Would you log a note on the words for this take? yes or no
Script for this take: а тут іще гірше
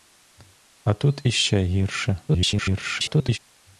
yes